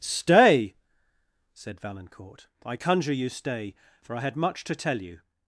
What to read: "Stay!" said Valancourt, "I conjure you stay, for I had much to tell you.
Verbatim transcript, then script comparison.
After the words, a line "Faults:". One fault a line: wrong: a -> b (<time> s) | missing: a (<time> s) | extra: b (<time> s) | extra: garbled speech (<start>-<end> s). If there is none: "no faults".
"Stay!" said Valancourt, "I conjure you stay, for I had much to tell you.
Faults:
no faults